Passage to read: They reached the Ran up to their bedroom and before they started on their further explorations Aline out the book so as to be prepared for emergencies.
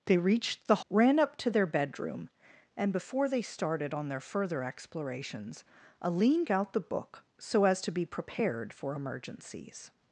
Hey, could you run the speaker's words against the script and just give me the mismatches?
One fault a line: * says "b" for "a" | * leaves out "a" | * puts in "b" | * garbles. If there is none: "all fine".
all fine